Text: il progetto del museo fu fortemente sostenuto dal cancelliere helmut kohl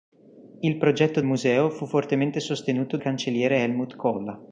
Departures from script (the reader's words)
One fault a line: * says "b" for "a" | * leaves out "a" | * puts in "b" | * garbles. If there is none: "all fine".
* leaves out "del"
* leaves out "dal"